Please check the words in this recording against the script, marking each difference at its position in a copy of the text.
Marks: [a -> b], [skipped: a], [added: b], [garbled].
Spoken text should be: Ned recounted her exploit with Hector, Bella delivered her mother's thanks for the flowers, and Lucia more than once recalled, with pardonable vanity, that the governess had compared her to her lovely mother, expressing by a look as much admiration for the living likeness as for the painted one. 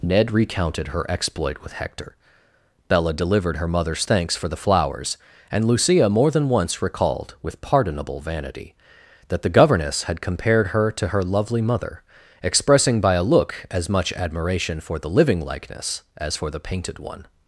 Ned recounted her exploit with Hector, Bella delivered her mother's thanks for the flowers, and Lucia more than once recalled, with pardonable vanity, that the governess had compared her to her lovely mother, expressing by a look as much admiration for the living likeness as for the painted one.